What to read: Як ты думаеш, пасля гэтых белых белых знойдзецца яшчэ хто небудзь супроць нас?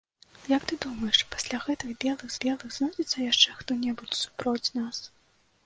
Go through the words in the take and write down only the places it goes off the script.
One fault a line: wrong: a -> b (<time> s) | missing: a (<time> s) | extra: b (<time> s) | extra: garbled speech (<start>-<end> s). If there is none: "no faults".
no faults